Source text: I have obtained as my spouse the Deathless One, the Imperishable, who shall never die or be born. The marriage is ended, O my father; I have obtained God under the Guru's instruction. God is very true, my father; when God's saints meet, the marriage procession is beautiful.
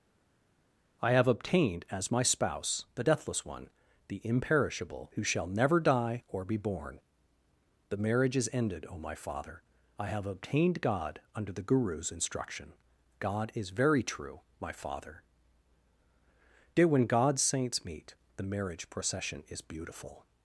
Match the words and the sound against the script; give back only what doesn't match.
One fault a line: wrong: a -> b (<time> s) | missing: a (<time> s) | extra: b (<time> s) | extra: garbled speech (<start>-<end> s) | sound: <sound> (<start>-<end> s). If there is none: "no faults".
extra: dear (16.8 s)